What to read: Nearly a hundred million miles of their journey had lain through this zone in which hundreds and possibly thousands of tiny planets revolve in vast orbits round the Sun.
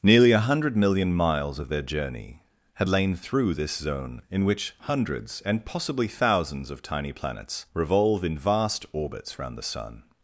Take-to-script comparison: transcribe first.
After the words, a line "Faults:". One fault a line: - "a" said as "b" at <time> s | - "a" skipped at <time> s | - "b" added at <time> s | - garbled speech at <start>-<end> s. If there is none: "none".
Nearly a hundred million miles of their journey had lain through this zone in which hundreds and possibly thousands of tiny planets revolve in vast orbits round the Sun.
Faults:
none